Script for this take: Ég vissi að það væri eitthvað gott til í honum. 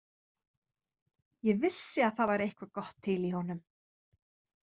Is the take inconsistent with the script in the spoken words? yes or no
no